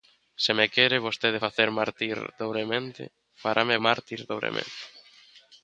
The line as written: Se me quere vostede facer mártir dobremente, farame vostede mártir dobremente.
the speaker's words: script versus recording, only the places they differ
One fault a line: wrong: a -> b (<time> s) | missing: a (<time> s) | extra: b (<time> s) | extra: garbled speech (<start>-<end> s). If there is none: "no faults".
missing: vostede (3.8 s)